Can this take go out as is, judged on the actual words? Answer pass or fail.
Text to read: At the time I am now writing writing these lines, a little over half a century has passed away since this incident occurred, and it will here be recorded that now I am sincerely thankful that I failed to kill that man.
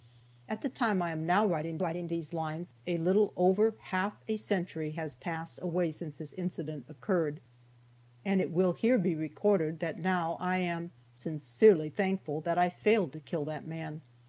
pass